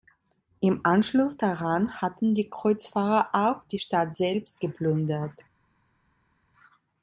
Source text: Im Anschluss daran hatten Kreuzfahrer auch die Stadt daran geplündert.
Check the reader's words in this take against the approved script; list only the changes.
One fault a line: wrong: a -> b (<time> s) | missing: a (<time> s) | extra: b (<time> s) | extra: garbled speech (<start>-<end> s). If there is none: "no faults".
extra: die (2.3 s)
wrong: daran -> selbst (4.1 s)